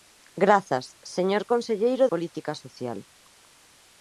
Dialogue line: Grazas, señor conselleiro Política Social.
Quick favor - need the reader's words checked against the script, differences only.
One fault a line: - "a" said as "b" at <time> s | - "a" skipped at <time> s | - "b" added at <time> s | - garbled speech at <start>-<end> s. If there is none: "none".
none